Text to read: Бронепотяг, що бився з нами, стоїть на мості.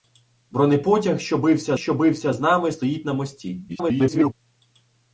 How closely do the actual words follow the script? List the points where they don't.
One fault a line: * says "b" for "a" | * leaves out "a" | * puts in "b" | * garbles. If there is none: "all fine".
* puts in "що бився"
* garbles